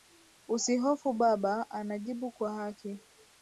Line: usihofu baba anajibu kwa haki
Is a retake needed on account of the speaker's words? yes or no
no